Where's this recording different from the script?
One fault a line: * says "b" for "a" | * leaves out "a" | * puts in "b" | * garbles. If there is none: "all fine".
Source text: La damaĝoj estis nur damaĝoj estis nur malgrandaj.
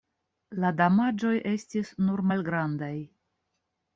* leaves out "damaĝoj estis nur"